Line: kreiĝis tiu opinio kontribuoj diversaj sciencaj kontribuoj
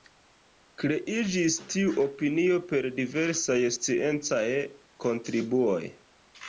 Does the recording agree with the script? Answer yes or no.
no